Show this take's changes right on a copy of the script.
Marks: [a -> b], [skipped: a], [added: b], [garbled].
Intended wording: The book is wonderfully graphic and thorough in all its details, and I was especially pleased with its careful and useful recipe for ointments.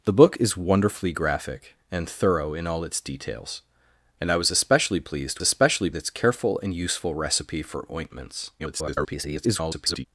The book is wonderfully graphic and thorough in all its details, and I was especially pleased [with -> especially] its careful and useful recipe for ointments. [garbled]